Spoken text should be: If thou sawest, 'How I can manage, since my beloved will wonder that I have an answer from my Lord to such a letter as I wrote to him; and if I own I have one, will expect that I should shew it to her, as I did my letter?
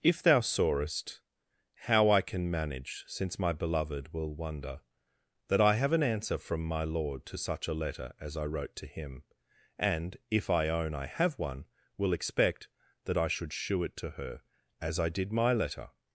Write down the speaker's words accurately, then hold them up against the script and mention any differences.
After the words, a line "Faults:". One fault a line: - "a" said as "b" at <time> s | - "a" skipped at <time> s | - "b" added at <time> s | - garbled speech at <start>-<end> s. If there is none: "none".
If thou sawest, 'How I can manage, since my beloved will wonder that I have an answer from my Lord to such a letter as I wrote to him; and if I own I have one, will expect that I should shew it to her, as I did my letter?
Faults:
none